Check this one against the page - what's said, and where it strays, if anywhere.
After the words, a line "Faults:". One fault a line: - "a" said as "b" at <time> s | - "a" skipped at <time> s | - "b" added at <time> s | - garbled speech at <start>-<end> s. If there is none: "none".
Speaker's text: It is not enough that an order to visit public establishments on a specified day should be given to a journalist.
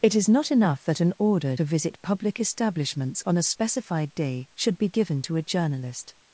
It is not enough that an order to visit public establishments on a specified day should be given to a journalist.
Faults:
none